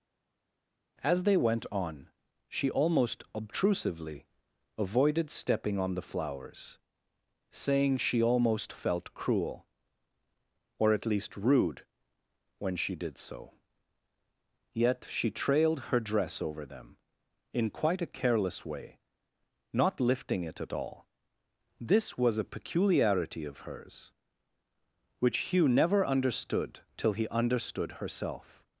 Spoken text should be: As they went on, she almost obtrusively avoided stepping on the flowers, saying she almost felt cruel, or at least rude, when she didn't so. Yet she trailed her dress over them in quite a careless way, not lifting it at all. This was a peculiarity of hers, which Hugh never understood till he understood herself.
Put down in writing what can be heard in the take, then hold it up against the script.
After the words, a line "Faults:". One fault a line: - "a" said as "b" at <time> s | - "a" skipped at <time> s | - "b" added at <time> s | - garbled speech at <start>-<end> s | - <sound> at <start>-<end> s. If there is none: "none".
As they went on, she almost obtrusively avoided stepping on the flowers, saying she almost felt cruel, or at least rude, when she did so. Yet she trailed her dress over them in quite a careless way, not lifting it at all. This was a peculiarity of hers, which Hugh never understood till he understood herself.
Faults:
- "didn't" said as "did" at 12.9 s